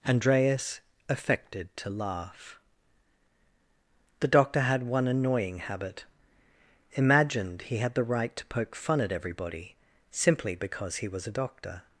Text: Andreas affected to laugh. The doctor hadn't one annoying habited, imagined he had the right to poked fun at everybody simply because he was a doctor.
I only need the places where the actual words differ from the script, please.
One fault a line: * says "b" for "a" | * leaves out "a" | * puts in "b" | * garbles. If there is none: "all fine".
* says "had" for "hadn't"
* says "habit" for "habited"
* says "poke" for "poked"